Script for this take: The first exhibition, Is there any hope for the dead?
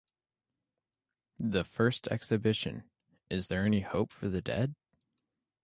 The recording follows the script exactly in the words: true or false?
true